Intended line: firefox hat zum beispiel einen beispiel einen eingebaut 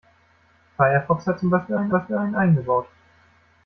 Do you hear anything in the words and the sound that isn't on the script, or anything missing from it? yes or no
no